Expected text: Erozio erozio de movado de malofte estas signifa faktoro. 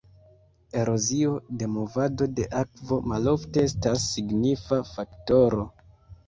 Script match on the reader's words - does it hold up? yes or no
no